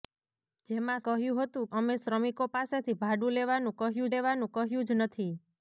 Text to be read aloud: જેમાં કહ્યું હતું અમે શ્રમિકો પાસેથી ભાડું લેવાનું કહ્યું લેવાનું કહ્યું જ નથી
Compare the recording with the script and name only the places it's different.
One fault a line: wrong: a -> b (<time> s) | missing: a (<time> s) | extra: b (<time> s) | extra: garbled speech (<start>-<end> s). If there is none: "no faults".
no faults